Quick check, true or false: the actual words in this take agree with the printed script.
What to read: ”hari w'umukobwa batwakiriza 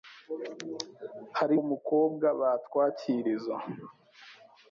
true